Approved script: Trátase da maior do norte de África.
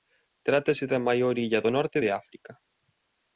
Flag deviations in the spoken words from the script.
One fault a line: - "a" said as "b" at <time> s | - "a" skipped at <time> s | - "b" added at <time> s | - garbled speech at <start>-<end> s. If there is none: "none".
- "illa" added at 1.4 s